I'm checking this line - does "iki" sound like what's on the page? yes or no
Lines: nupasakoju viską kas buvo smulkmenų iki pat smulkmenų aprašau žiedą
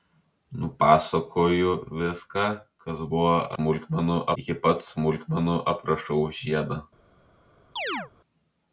yes